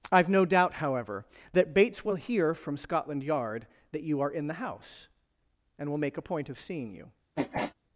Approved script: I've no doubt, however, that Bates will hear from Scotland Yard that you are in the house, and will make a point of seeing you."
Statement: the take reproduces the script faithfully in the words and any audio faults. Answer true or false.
false